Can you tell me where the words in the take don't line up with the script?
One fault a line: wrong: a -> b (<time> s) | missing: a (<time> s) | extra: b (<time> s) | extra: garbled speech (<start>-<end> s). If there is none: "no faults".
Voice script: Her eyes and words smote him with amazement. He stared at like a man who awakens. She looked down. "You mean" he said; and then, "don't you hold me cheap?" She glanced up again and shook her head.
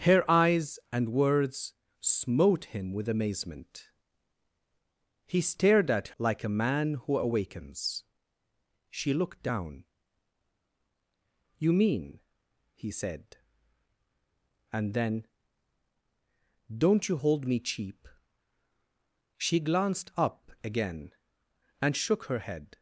no faults